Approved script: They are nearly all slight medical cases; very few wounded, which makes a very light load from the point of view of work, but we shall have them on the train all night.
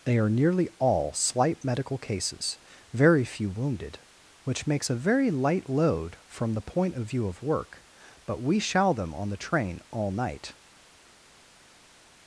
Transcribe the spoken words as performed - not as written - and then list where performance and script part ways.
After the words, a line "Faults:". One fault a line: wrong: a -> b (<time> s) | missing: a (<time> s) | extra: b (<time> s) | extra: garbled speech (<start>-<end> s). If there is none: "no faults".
They are nearly all slight medical cases; very few wounded, which makes a very light load from the point of view of work, but we shall them on the train all night.
Faults:
missing: have (8.9 s)